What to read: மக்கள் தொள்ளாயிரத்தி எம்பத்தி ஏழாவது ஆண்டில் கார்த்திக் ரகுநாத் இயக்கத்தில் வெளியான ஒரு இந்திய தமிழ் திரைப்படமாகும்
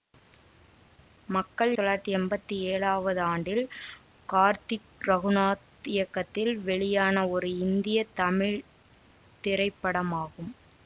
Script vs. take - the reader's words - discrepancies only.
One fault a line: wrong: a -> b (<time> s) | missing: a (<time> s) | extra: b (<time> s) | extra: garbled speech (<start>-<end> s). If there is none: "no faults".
no faults